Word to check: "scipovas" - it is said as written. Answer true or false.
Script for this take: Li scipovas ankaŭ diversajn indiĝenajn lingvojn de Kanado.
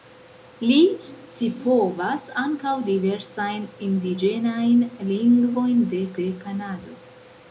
true